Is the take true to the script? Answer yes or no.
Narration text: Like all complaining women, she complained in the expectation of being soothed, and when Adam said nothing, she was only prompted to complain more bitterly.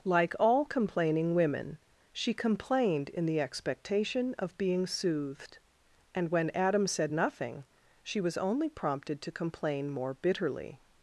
yes